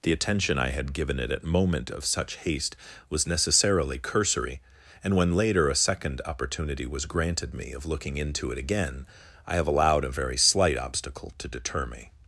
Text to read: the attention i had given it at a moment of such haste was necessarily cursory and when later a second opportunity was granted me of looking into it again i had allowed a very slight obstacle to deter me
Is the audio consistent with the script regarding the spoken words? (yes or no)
no